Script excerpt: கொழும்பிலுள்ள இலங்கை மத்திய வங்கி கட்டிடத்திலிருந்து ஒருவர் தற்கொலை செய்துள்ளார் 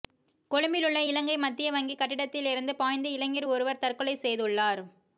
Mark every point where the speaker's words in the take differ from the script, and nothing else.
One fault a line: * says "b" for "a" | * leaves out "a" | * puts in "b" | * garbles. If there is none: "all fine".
* puts in "பாய்ந்து இளைஞர்"